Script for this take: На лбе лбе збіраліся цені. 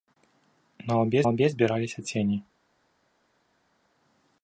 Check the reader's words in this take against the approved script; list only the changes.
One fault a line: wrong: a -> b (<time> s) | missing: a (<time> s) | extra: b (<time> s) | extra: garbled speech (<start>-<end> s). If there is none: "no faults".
no faults